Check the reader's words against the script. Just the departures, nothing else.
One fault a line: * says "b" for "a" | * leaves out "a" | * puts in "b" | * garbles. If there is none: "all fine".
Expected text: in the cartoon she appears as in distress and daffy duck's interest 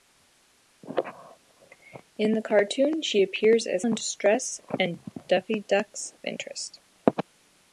all fine